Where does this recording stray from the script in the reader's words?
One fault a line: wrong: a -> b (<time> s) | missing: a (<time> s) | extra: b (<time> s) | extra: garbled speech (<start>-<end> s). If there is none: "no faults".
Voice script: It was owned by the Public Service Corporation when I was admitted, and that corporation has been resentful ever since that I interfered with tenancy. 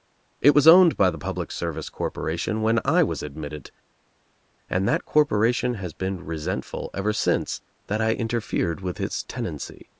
extra: its (9.0 s)